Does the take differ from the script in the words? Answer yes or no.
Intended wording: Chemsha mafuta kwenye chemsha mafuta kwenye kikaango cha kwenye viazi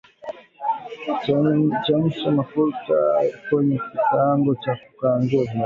yes